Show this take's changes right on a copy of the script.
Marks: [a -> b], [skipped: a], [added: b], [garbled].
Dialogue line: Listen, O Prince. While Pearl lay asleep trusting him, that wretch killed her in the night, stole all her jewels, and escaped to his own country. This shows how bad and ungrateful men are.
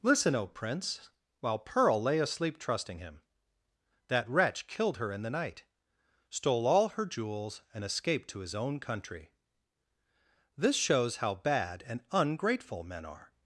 Listen, O Prince. While Pearl lay asleep trusting him, that wretch killed her in the night, stole all her jewels, and escaped to his own country. This shows how bad and ungrateful men are.